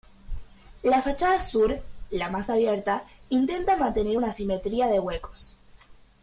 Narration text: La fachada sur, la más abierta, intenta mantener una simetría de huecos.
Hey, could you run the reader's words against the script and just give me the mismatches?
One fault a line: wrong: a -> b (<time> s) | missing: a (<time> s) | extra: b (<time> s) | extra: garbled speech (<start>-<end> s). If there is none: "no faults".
no faults